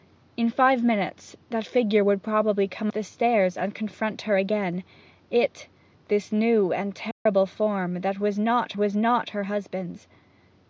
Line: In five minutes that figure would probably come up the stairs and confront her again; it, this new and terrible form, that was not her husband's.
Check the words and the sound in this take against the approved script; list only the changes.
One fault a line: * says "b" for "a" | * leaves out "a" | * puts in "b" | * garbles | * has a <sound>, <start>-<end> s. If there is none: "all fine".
* leaves out "up"
* has a dropout, 7.1-7.3 s
* puts in "was not"